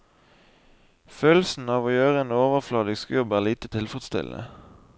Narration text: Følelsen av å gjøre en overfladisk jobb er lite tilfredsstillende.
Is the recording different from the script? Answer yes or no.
no